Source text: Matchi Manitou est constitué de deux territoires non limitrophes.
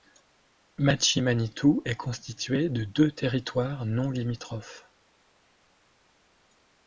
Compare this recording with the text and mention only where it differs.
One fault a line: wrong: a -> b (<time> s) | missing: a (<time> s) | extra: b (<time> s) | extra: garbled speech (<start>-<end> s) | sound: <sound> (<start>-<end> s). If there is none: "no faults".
no faults